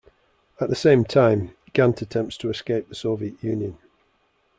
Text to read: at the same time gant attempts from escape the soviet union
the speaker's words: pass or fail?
fail